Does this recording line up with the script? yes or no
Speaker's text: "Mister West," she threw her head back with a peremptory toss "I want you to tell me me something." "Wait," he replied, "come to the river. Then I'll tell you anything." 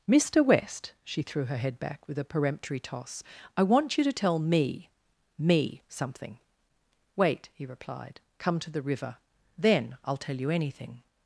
yes